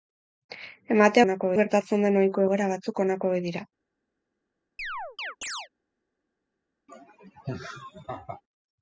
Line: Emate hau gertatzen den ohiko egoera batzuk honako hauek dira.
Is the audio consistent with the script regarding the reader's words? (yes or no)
no